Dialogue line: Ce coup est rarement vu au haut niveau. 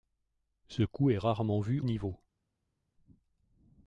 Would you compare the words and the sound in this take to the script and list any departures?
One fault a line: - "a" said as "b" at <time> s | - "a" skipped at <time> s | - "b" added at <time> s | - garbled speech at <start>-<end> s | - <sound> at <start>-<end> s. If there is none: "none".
- "au haut" skipped at 1.8 s